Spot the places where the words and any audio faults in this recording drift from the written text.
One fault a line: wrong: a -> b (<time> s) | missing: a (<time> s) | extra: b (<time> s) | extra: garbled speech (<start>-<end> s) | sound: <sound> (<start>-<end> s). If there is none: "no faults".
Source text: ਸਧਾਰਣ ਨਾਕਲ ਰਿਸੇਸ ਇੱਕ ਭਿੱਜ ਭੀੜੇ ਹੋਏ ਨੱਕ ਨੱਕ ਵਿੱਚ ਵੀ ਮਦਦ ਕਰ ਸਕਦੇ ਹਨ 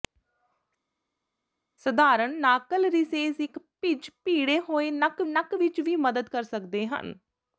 no faults